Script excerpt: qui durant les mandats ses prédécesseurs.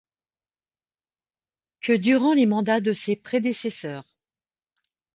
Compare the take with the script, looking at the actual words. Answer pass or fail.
fail